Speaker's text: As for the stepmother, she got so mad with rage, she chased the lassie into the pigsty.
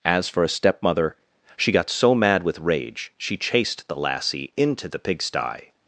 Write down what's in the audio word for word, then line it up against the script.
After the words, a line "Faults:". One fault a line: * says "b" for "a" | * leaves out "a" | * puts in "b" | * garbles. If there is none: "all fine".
As for a stepmother, she got so mad with rage, she chased the lassie into the pigsty.
Faults:
* says "a" for "the"